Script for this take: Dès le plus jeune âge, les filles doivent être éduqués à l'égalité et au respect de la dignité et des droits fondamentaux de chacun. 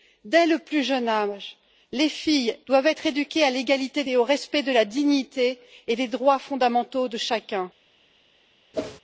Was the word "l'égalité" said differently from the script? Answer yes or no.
no